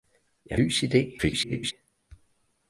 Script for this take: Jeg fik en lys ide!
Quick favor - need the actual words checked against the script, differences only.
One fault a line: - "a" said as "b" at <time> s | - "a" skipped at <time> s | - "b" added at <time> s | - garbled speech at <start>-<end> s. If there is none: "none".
- "fik en" skipped at 0.6 s
- garbled speech at 1.2-1.7 s